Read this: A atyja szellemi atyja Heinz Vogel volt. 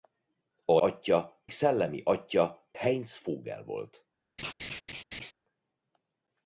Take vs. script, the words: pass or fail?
pass